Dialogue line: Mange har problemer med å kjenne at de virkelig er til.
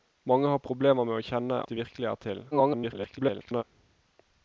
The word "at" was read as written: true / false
false